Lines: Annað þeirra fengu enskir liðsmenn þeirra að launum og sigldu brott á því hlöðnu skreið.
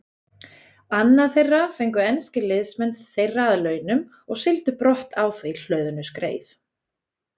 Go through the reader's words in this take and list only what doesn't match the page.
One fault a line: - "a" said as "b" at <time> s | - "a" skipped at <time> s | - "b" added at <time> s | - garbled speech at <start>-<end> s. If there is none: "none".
none